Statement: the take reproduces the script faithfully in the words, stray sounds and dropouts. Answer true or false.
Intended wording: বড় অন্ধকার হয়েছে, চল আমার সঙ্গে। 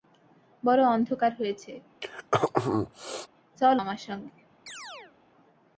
false